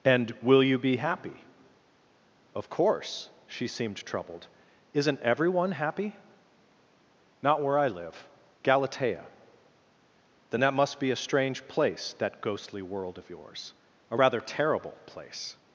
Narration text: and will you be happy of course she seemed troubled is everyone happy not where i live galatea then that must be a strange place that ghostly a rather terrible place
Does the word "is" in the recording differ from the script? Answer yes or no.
yes